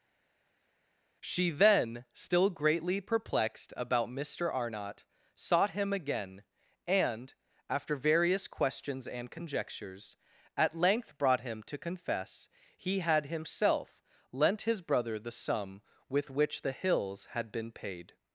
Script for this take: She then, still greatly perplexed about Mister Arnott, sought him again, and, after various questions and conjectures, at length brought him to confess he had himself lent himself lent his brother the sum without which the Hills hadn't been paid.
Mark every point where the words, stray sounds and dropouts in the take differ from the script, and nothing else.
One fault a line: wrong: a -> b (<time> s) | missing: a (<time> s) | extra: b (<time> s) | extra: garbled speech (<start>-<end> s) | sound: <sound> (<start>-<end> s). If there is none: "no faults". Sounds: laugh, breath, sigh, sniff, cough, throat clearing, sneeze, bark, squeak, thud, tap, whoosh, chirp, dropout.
missing: himself lent (14.6 s)
wrong: without -> with (16.1 s)
wrong: hadn't -> had (17.3 s)